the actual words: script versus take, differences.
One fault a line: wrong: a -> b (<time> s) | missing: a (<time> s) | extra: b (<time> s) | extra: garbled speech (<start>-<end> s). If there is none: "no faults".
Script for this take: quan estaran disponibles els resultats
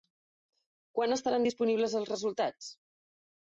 no faults